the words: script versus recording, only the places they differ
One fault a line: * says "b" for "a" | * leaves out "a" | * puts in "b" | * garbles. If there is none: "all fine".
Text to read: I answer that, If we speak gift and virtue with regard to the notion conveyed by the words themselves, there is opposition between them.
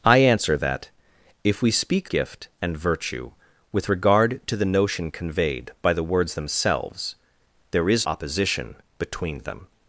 all fine